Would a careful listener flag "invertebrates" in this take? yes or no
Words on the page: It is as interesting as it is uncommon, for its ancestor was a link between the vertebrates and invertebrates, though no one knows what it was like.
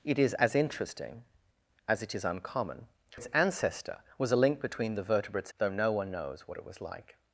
yes